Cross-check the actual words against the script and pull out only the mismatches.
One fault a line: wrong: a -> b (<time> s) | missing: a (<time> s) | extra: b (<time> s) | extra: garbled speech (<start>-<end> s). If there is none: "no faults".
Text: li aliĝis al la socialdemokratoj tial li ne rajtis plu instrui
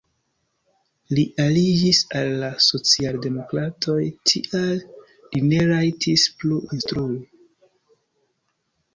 no faults